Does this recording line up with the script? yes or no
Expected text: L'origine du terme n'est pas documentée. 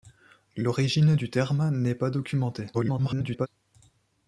no